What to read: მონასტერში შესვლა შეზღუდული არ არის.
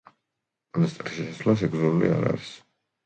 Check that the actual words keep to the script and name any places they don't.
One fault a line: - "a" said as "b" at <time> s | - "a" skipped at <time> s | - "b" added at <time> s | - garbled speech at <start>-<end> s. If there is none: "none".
none